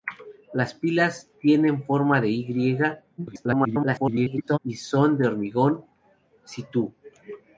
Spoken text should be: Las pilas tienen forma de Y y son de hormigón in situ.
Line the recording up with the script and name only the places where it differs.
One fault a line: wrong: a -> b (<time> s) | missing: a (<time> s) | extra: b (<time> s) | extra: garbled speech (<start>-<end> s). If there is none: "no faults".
extra: garbled speech (3.2-4.6 s)
missing: in (5.8 s)